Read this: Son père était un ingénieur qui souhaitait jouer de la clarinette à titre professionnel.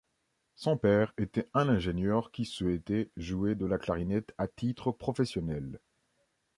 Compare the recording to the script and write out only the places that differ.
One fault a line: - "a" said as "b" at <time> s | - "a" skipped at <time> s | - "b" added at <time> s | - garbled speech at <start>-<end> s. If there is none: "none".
none